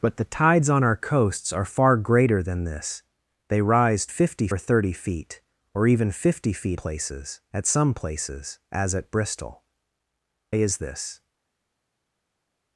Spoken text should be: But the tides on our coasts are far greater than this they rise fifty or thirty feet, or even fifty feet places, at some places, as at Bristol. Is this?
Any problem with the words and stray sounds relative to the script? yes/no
no